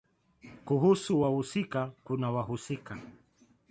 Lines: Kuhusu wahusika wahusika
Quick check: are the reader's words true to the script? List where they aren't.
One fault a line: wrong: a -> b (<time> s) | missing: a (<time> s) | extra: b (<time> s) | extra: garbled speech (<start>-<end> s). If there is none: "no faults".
extra: kuna (2.0 s)